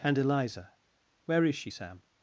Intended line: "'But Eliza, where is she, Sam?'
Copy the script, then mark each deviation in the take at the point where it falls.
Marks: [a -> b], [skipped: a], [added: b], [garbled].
["'But -> And] Eliza, where is she, Sam?'